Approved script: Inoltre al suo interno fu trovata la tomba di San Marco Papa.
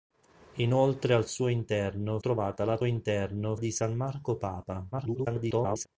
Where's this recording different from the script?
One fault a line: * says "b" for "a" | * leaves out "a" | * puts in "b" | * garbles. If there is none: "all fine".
* leaves out "fu"
* says "interno" for "tomba"
* garbles